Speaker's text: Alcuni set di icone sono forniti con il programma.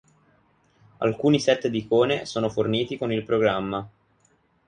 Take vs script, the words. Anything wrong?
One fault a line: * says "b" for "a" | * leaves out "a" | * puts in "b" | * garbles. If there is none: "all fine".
all fine